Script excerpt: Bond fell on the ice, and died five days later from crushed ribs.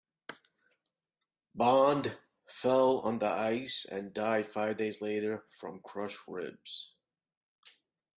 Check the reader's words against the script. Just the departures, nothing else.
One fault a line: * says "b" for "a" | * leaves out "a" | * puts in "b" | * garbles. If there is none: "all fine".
all fine